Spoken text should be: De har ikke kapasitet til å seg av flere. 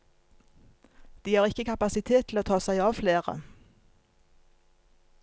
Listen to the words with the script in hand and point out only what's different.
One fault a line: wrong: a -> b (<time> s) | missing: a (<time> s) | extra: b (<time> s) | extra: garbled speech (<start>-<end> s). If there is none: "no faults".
extra: ta (2.5 s)